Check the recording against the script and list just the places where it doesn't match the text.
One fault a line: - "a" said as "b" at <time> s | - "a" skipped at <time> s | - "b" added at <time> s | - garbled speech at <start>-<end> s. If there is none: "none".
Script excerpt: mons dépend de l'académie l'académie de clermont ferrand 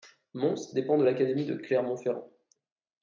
- "l'académie" skipped at 1.5 s